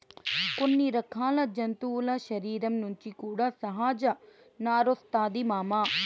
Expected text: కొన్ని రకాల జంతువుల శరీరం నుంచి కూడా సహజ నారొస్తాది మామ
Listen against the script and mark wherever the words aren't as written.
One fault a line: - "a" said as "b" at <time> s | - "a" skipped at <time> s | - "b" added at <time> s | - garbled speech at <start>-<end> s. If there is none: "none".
none